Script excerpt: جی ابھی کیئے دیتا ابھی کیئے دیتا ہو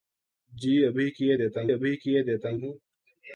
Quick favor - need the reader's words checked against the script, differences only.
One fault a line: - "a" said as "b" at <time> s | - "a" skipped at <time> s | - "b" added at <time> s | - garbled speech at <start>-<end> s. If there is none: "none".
none